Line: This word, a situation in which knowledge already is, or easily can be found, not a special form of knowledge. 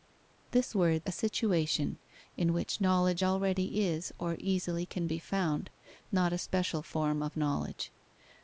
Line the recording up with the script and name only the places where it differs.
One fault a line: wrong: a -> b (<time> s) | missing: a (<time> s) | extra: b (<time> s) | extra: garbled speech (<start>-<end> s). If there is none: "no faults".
no faults